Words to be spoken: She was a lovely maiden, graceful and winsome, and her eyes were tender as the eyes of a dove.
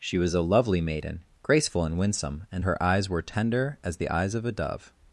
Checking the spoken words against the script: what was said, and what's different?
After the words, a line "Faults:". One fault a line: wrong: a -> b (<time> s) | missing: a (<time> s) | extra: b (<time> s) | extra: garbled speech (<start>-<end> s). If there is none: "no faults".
She was a lovely maiden, graceful and winsome, and her eyes were tender as the eyes of a dove.
Faults:
no faults